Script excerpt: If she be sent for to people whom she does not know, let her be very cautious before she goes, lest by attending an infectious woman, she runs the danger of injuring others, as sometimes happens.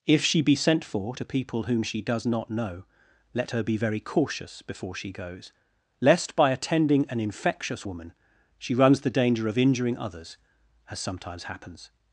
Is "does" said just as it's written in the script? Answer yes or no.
yes